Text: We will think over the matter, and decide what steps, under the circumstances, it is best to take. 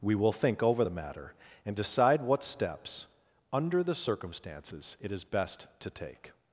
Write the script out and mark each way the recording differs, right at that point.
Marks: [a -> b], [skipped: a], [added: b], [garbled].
We will think over the matter, and decide what steps, under the circumstances, it is best to take.